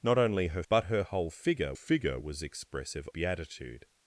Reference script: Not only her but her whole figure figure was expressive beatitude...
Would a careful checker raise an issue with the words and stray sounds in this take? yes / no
no